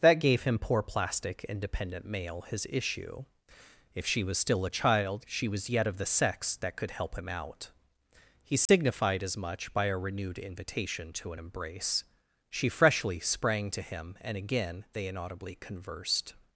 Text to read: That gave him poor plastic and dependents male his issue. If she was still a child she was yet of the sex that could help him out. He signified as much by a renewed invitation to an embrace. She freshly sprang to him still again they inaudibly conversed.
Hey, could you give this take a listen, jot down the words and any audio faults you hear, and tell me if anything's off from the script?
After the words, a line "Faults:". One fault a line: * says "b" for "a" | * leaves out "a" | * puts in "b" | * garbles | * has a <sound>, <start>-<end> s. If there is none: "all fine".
That gave him poor plastic and dependent male his issue. If she was still a child she was yet of the sex that could help him out. He signified as much by a renewed invitation to an embrace. She freshly sprang to him and again they inaudibly conversed.
Faults:
* says "dependent" for "dependents"
* has a dropout, 8.7-8.7 s
* says "and" for "still"